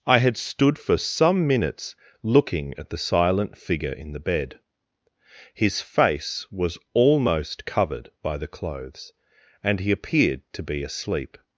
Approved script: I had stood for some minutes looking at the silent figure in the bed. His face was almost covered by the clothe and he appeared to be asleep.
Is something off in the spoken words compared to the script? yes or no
yes